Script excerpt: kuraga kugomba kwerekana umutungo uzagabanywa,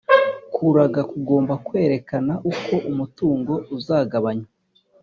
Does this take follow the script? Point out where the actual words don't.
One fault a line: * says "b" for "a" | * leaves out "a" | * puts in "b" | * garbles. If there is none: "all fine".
* puts in "uko"